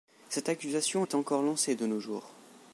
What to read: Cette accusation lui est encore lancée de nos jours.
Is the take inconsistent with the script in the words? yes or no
yes